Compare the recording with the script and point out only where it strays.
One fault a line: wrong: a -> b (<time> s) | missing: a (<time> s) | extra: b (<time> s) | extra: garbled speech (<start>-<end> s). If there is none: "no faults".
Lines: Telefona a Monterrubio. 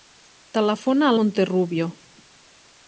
no faults